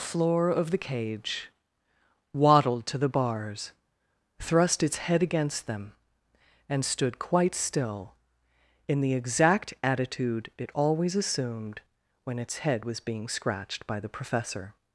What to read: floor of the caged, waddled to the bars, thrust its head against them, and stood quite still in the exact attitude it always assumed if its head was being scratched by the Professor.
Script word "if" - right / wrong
wrong